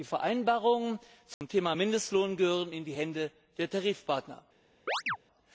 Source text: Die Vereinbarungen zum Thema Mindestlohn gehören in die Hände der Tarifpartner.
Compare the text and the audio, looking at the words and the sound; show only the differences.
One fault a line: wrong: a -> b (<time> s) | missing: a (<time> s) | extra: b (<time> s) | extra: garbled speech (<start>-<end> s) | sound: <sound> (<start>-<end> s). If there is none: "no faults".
sound: dropout (1.3-1.4 s)
sound: chirp (4.9-5.2 s)